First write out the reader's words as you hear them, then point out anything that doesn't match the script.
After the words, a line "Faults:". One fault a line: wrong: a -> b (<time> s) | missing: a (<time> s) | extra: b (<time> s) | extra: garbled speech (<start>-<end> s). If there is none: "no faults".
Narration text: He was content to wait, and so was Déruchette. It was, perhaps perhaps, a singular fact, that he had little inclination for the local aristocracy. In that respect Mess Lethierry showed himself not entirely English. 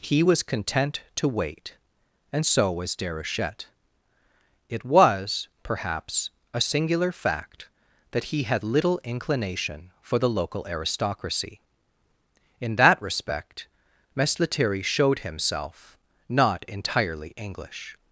He was content to wait, and so was Déruchette. It was, perhaps, a singular fact, that he had little inclination for the local aristocracy. In that respect Mess Lethierry showed himself not entirely English.
Faults:
missing: perhaps (6.3 s)